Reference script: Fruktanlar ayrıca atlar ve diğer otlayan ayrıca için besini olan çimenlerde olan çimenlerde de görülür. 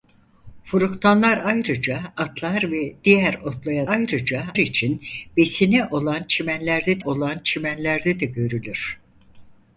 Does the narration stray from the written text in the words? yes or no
no